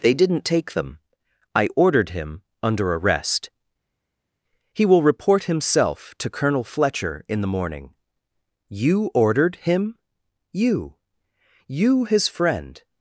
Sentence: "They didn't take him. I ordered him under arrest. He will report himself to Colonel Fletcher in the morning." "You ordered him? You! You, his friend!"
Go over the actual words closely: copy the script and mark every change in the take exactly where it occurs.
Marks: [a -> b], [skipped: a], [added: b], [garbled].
"They didn't take [him. -> them] I ordered him under arrest. He will report himself to Colonel Fletcher in the morning." "You ordered him? You! You, his friend!"